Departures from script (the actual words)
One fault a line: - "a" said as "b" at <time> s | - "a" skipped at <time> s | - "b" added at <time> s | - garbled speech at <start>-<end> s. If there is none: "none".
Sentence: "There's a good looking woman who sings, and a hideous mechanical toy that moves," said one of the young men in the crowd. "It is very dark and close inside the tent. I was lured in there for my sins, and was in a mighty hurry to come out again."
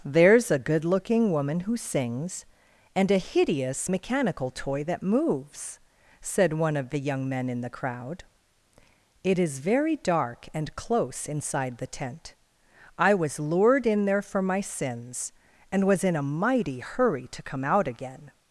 none